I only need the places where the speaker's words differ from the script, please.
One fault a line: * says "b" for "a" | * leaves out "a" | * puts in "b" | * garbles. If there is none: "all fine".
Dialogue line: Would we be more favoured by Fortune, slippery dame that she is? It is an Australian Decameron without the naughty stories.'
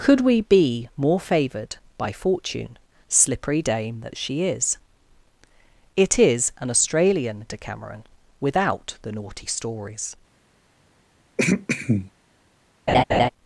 * says "Could" for "Would"